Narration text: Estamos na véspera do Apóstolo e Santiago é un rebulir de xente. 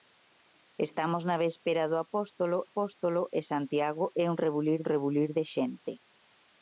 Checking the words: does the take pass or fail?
fail